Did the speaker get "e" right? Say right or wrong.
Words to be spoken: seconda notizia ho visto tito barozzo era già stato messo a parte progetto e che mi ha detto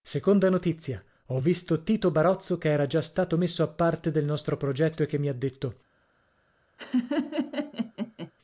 right